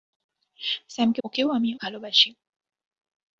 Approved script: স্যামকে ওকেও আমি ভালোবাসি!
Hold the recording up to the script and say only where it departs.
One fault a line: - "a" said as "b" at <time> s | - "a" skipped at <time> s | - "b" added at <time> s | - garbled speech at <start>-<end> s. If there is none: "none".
none